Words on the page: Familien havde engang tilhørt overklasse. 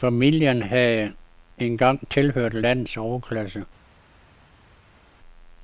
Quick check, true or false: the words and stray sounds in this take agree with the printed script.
false